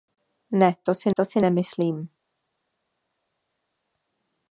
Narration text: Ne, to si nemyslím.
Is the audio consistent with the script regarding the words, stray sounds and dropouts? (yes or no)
no